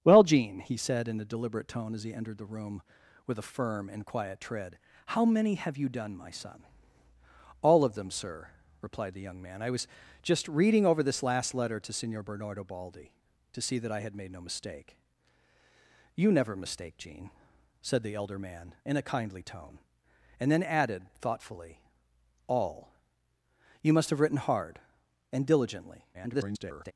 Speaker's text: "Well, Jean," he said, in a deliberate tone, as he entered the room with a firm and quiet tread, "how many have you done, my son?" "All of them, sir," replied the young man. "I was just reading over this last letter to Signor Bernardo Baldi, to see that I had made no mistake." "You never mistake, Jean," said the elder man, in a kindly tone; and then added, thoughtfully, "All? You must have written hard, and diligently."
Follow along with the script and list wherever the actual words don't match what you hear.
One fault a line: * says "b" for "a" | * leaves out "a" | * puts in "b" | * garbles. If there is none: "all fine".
* garbles